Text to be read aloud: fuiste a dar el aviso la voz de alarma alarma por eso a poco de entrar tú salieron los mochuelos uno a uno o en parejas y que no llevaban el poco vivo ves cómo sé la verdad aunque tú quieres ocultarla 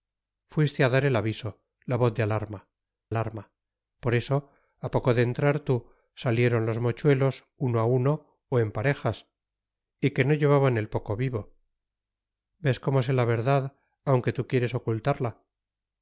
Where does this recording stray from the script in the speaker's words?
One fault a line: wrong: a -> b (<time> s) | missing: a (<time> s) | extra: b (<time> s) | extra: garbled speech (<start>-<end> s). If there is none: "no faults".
no faults